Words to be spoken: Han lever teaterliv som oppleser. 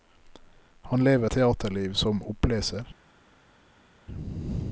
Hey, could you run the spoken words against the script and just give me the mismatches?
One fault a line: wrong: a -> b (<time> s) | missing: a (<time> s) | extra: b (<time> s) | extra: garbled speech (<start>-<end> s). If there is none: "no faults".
no faults